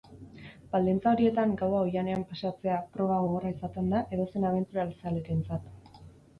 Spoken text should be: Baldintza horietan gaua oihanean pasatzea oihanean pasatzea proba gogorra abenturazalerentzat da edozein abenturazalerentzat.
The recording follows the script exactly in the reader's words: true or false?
false